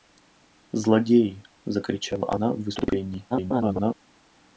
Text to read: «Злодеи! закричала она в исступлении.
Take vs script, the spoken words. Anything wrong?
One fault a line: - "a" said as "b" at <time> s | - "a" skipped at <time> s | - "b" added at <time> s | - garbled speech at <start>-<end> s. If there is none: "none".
- garbled speech at 3.3-3.9 s